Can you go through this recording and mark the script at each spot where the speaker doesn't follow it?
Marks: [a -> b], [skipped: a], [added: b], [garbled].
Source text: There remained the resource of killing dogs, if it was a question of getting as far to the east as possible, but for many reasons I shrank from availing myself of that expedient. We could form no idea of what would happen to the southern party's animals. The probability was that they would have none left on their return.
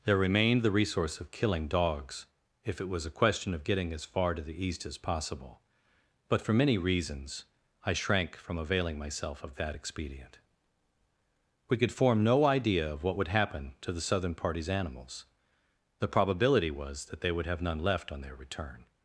There remained the resource of killing dogs, if it was a question of getting as far to the east as possible, but for many reasons I shrank from availing myself of that expedient. We could form no idea of what would happen to the southern party's animals. The probability was that they would have none left on their return.